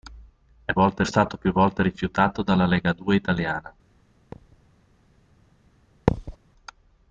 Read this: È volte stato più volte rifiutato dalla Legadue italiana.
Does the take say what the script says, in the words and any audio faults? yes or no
no